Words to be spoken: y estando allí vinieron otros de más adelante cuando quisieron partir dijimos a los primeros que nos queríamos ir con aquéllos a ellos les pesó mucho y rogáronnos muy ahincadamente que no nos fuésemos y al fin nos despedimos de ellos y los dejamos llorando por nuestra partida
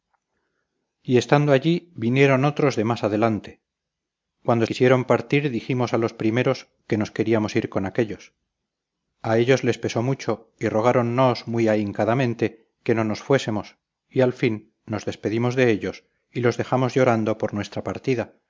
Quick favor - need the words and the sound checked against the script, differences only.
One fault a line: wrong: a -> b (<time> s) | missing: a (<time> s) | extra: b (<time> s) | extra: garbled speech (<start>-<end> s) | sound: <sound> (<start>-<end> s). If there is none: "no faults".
no faults